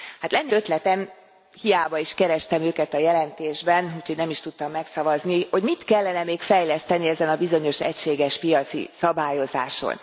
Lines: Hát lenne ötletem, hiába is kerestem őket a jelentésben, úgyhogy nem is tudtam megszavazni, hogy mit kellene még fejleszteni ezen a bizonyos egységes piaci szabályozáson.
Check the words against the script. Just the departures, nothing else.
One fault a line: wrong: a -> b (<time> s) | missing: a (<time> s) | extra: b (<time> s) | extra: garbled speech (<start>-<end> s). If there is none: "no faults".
no faults